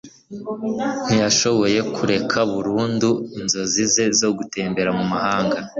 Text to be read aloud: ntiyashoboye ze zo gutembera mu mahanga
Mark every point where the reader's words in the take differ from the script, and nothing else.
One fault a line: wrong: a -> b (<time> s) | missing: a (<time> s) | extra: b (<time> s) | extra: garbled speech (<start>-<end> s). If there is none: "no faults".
extra: kureka burundu inzozi (1.9 s)